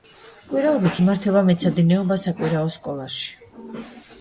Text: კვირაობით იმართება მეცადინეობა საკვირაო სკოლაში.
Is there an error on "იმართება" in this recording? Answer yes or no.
no